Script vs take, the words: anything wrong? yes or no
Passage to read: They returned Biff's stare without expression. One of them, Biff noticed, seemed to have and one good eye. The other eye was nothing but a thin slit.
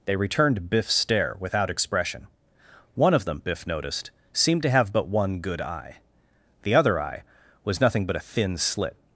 yes